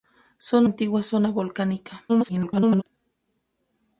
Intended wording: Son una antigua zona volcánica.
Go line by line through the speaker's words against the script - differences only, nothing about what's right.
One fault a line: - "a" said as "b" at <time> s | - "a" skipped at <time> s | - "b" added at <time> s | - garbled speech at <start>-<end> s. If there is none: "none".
- "una" skipped at 0.7 s
- garbled speech at 2.1-2.8 s